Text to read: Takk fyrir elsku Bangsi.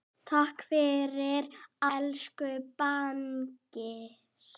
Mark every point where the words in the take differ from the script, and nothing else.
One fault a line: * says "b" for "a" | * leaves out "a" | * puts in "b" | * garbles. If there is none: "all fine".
all fine